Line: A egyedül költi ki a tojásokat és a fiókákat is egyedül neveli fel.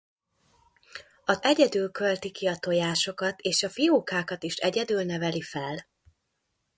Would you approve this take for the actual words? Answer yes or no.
yes